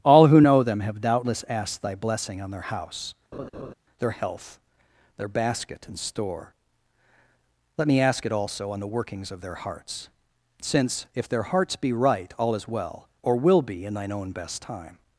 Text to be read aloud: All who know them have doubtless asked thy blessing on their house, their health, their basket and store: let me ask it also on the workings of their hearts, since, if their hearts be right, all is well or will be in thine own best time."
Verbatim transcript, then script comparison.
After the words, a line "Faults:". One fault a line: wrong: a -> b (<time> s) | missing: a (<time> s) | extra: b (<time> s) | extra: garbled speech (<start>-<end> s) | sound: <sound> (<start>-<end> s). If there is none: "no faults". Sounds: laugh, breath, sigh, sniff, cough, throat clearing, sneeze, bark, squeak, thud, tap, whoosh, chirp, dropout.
All who know them have doubtless asked thy blessing on their house, their health, their basket and store: let me ask it also on the workings of their hearts, since, if their hearts be right, all is well or will be in thine own best time."
Faults:
sound: laugh (3.3-3.7 s)